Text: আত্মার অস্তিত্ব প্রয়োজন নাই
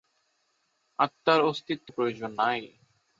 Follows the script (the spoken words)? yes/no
yes